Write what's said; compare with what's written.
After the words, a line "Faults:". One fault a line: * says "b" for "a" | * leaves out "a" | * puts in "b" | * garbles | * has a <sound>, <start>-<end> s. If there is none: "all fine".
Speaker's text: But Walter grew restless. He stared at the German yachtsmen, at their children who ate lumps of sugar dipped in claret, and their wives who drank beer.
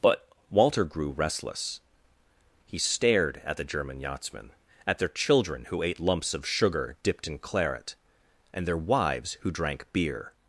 But Walter grew restless. He stared at the German yachtsmen, at their children who ate lumps of sugar dipped in claret, and their wives who drank beer.
Faults:
all fine